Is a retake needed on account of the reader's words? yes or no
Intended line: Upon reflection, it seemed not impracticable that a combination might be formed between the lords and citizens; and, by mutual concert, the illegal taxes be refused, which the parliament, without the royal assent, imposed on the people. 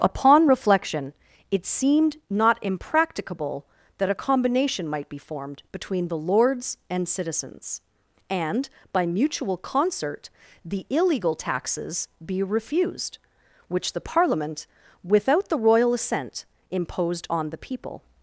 no